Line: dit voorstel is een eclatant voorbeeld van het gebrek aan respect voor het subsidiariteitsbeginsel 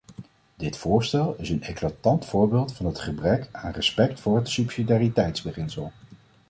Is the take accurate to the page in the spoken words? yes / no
yes